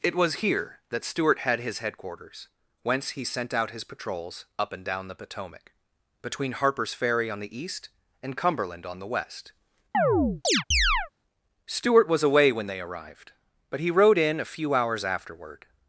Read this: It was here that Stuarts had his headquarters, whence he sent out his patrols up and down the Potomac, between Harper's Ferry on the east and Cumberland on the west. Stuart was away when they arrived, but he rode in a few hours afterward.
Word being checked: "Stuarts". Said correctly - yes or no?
no